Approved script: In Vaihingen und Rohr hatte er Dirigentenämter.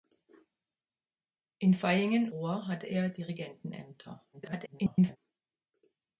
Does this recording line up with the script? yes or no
no